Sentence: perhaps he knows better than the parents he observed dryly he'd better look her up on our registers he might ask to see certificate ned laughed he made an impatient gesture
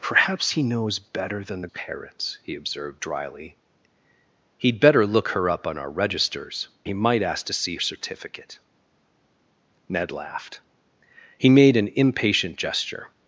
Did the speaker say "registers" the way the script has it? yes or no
yes